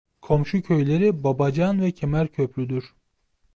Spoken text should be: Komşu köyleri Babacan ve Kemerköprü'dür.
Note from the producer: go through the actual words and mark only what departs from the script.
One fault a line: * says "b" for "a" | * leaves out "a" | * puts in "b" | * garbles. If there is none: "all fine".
all fine